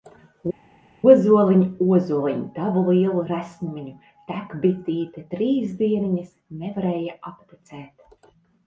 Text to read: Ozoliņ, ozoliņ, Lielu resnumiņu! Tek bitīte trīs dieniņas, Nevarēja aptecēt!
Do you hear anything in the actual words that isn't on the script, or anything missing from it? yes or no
yes